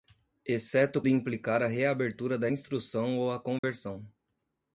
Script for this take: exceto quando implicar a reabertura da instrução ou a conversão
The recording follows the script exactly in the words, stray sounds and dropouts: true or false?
false